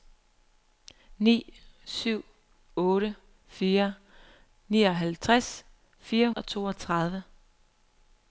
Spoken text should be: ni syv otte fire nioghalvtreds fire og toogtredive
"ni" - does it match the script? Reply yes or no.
yes